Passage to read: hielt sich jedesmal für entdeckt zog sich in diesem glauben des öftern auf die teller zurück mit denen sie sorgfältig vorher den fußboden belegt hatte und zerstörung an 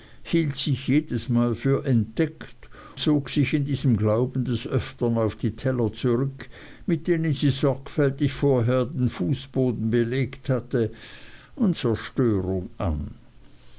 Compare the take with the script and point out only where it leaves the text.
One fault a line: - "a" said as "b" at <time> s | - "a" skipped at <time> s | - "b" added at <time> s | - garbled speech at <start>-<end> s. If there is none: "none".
none